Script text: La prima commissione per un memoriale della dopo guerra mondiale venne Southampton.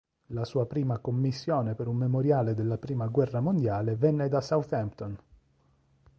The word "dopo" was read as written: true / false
false